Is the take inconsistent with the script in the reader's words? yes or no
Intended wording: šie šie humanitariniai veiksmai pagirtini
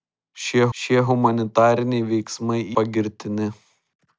no